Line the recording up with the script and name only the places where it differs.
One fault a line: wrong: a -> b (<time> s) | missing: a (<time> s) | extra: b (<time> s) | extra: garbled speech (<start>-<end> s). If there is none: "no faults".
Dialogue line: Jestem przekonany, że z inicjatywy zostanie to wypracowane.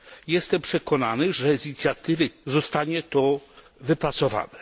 no faults